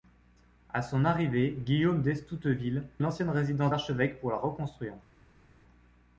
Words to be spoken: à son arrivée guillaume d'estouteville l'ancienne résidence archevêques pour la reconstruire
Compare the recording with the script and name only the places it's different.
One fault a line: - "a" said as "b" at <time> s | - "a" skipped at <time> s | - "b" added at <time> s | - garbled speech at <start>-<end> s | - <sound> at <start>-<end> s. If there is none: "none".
none